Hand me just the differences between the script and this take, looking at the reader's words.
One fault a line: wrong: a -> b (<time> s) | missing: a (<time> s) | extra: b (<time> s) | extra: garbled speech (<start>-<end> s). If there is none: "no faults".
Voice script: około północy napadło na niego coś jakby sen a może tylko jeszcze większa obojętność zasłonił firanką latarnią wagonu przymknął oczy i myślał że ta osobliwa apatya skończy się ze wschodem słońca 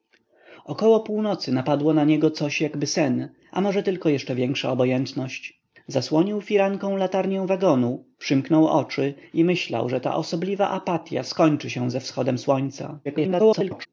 extra: garbled speech (13.0-13.9 s)